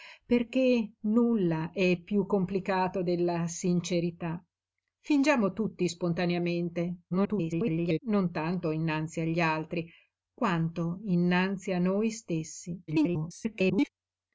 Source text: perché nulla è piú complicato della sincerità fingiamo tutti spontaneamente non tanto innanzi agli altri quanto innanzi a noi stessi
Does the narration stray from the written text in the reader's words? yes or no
yes